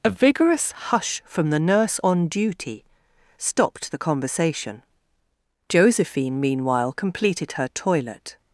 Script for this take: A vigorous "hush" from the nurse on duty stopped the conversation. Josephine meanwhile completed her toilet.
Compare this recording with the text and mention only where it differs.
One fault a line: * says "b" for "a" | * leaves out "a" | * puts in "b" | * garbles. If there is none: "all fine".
all fine